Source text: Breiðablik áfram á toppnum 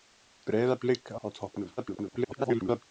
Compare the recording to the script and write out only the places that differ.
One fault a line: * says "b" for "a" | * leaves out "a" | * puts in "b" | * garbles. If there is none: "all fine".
* leaves out "áfram"
* garbles